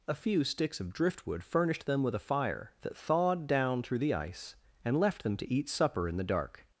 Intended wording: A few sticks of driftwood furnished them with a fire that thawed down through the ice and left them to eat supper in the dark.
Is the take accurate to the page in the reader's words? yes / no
yes